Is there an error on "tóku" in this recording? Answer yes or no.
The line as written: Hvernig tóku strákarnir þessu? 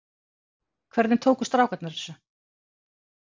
no